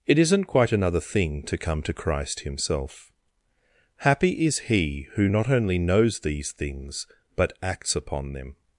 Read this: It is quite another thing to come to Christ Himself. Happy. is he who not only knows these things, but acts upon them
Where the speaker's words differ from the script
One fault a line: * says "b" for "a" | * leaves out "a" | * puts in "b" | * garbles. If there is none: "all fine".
* says "isn't" for "is"